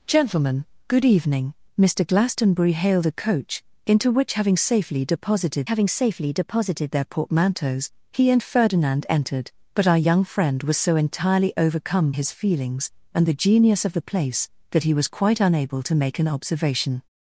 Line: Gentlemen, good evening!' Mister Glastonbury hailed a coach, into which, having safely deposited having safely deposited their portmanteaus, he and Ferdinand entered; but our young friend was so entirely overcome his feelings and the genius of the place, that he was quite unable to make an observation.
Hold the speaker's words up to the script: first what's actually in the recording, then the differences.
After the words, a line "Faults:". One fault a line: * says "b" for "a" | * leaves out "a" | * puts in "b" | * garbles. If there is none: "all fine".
Gentlemen, good evening!' Mister Glastonbury hailed a coach, into which, having safely deposited having safely deposited their portmanteaus, he and Ferdinand entered; but our young friend was so entirely overcome his feelings and the genius of the place, that he was quite unable to make an observation.
Faults:
all fine